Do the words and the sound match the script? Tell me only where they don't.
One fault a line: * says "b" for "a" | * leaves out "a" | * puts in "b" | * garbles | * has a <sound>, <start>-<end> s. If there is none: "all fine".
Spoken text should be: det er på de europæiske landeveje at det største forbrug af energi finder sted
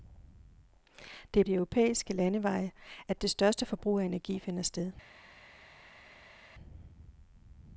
* leaves out "på"